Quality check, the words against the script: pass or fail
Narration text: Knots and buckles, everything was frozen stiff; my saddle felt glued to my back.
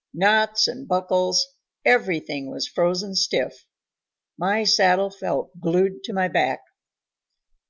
pass